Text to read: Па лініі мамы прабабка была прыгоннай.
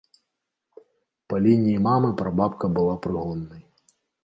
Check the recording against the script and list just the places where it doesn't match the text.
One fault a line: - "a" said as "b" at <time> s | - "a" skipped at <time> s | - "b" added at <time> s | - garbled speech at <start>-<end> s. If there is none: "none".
none